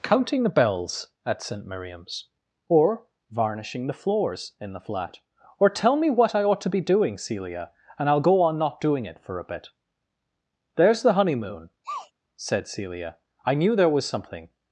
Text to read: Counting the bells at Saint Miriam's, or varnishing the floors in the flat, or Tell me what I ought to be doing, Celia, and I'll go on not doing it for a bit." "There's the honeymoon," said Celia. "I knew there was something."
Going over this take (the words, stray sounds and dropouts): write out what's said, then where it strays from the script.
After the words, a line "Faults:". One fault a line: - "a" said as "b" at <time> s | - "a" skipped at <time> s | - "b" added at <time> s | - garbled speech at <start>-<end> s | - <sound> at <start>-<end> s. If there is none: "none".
Counting the bells at Saint Miriam's, or varnishing the floors in the flat, or Tell me what I ought to be doing, Celia, and I'll go on not doing it for a bit." "There's the honeymoon," said Celia. "I knew there was something."
Faults:
- sneeze at 11.8-12.1 s